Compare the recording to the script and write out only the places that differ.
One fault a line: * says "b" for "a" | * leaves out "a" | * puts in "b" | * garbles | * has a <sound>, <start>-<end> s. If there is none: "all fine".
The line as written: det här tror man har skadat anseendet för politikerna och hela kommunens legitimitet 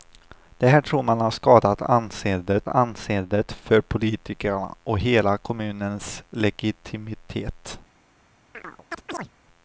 * puts in "anseendet"
* has a chirp, 8.5-9.3 s